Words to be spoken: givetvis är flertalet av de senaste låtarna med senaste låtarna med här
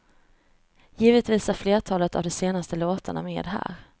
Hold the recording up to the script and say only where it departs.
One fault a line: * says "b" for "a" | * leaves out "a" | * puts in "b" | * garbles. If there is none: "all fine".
* leaves out "senaste låtarna med"